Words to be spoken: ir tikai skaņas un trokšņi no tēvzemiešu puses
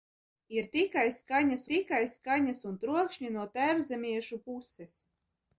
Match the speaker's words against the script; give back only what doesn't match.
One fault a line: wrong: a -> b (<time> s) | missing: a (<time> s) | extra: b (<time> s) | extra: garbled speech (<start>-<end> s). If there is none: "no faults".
extra: tikai skaņas (1.7 s)